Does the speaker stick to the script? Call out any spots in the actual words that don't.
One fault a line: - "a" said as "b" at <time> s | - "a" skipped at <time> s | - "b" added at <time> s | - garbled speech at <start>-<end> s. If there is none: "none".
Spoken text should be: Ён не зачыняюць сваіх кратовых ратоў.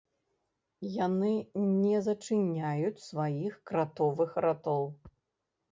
- "Ён" said as "Яны" at 1.1 s